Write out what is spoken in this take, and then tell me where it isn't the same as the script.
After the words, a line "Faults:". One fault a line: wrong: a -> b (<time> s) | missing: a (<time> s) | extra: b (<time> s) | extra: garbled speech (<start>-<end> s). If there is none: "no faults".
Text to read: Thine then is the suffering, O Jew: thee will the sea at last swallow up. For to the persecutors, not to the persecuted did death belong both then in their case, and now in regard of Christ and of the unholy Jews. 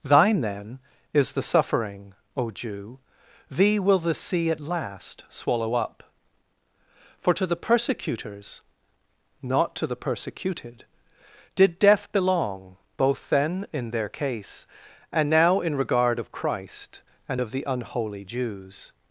Thine then is the suffering, O Jew: thee will the sea at last swallow up. For to the persecutors, not to the persecuted did death belong both then in their case, and now in regard of Christ and of the unholy Jews.
Faults:
no faults